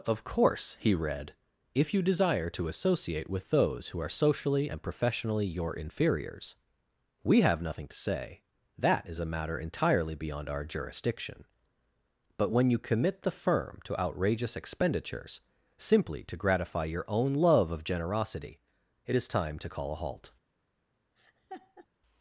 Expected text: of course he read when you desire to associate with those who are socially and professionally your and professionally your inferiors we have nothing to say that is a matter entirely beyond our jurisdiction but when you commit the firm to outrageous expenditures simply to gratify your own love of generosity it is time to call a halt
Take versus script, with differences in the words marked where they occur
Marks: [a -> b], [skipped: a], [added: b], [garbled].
of course he read [when -> if] you desire to associate with those who are socially and professionally your [skipped: and professionally your] inferiors we have nothing to say that is a matter entirely beyond our jurisdiction but when you commit the firm to outrageous expenditures simply to gratify your own love of generosity it is time to call a halt